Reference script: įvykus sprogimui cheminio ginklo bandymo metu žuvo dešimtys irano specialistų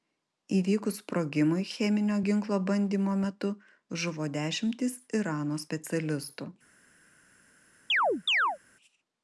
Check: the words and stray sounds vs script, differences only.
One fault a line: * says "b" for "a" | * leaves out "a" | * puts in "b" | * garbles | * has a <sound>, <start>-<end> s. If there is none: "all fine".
* has a chirp, 7.9-8.6 s